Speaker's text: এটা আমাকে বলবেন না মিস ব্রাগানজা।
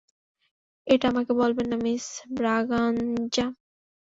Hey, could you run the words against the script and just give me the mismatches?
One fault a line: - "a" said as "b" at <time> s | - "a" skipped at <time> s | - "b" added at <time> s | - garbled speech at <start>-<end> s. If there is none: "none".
none